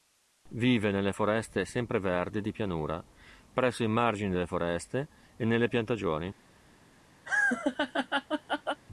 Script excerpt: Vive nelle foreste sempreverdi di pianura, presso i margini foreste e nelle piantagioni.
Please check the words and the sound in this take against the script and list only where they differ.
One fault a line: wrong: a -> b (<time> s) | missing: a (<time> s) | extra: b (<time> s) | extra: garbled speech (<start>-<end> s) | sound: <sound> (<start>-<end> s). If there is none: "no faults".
extra: delle (4.3 s)
sound: laugh (7.3-8.8 s)